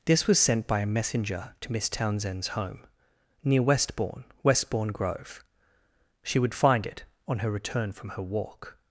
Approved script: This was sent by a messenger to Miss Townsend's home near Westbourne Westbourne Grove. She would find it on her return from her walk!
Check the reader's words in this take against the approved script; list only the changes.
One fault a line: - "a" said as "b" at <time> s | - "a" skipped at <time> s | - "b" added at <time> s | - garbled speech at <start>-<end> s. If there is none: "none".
none